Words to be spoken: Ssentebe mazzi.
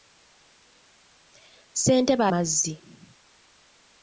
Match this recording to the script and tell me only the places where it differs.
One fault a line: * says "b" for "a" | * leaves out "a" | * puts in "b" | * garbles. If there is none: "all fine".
all fine